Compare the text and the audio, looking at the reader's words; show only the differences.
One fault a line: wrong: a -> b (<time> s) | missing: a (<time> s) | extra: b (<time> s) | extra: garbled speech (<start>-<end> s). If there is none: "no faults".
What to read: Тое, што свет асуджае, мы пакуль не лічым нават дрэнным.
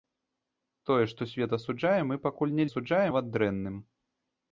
wrong: лічым -> асуджае (2.7 s)